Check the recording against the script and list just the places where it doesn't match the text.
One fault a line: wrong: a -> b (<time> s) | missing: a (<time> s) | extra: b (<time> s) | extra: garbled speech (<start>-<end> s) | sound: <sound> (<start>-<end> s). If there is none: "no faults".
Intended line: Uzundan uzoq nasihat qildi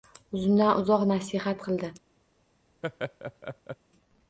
sound: laugh (2.8-3.8 s)